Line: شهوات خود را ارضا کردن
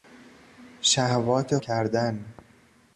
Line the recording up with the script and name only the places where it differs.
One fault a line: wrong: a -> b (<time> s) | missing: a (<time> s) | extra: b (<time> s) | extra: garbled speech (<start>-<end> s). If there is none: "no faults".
missing: خود را ارضا (1.6 s)